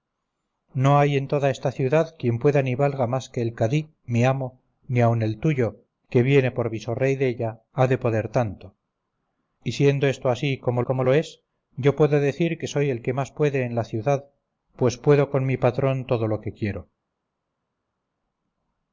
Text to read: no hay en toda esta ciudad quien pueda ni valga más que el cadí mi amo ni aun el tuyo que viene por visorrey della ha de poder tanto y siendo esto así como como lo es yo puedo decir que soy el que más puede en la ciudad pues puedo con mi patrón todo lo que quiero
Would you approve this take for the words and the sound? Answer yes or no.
yes